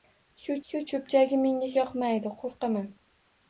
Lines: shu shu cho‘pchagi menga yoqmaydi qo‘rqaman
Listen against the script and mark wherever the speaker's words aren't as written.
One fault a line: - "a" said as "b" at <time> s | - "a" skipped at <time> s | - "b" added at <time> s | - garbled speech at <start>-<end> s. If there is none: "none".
none